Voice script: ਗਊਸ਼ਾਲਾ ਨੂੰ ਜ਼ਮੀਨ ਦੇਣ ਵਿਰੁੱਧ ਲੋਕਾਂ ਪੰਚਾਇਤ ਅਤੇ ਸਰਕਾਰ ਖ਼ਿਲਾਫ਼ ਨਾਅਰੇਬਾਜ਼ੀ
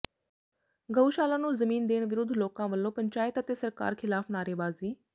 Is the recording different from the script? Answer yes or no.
yes